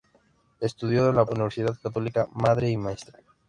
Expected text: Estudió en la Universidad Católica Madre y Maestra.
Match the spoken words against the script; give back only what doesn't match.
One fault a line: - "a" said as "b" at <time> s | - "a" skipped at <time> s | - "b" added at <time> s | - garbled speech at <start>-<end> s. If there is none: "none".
none